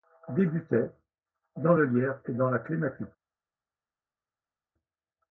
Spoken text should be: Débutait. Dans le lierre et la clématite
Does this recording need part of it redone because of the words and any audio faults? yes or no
yes